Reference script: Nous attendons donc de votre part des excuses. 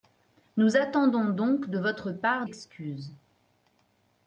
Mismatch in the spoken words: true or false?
true